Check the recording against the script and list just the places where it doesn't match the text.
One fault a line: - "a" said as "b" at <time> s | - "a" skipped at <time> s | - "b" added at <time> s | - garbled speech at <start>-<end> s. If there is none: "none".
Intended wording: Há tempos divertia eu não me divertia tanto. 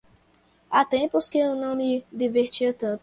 - "divertia" said as "que" at 1.3 s